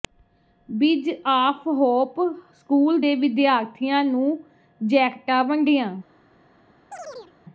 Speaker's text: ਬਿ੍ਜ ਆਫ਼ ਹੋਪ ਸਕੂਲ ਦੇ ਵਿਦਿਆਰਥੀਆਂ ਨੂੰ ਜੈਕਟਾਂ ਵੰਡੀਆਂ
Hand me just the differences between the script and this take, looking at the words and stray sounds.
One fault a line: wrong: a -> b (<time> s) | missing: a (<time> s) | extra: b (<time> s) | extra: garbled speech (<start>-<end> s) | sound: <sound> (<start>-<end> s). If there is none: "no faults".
sound: chirp (6.9-7.3 s)